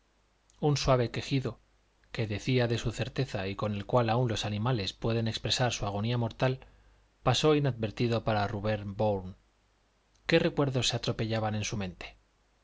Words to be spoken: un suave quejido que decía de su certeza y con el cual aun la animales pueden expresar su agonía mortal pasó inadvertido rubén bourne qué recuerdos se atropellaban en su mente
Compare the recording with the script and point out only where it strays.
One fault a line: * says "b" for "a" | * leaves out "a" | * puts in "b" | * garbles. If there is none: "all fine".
* says "los" for "la"
* puts in "para"